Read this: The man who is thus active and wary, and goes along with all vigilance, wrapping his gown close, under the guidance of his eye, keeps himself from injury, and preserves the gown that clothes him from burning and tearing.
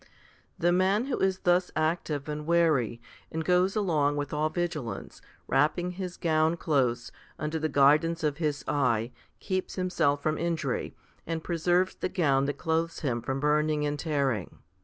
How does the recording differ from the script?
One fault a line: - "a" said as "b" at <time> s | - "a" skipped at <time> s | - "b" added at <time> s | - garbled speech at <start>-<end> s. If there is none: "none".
none